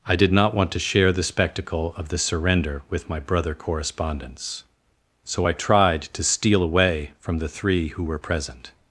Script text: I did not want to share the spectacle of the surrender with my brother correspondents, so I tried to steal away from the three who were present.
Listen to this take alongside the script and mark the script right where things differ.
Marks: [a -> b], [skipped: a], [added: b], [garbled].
I did not want to share the spectacle of the surrender with my brother correspondents, so I tried to steal away from the three who were present.